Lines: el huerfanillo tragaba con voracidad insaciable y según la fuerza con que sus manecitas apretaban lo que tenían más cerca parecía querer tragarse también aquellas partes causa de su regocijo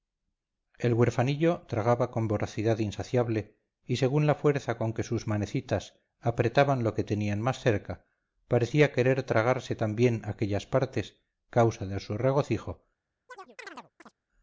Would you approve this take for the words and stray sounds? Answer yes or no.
no